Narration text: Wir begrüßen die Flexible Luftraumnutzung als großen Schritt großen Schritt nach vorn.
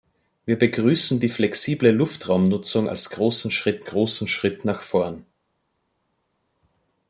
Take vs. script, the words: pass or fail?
pass